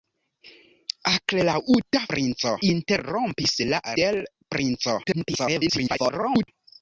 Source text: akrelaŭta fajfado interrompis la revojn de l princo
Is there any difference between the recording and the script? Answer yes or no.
yes